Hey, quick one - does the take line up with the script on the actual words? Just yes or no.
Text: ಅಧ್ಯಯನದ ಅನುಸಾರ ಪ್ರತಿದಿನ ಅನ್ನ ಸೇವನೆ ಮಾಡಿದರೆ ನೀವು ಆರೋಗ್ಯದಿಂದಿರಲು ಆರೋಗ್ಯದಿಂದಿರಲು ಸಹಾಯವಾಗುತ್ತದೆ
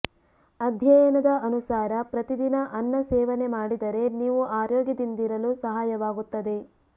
no